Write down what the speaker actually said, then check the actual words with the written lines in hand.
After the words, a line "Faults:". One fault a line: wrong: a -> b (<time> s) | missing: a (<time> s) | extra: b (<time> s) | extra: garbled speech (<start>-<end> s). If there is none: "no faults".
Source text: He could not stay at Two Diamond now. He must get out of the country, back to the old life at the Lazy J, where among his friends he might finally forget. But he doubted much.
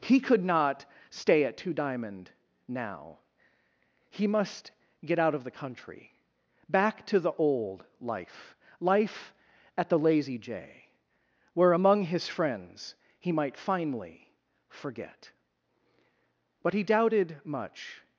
He could not stay at Two Diamond now. He must get out of the country, back to the old life life at the Lazy J, where among his friends he might finally forget. But he doubted much.
Faults:
extra: life (8.8 s)